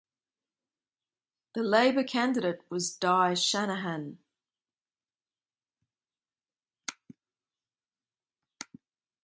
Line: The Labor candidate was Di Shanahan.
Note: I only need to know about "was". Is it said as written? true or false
true